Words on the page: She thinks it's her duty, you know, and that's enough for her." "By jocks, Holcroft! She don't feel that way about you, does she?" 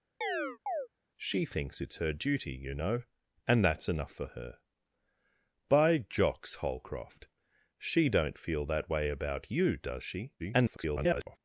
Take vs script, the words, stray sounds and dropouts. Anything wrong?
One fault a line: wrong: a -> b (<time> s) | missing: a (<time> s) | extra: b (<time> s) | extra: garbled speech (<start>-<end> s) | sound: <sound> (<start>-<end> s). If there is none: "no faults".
sound: chirp (0.2-0.9 s)
extra: garbled speech (10.4-11.4 s)